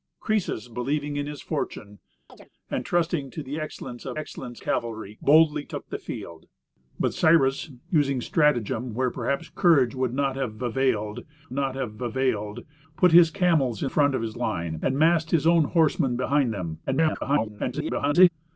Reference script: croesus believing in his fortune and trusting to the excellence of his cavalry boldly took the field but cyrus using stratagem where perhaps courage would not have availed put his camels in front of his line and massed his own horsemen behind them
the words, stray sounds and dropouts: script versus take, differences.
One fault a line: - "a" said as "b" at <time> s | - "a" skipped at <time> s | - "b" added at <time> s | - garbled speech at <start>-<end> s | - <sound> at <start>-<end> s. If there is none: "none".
- chirp at 2.3-2.5 s
- "his" said as "excellence" at 4.2 s
- "not have availed" added at 11.5 s
- garbled speech at 16.9-18.3 s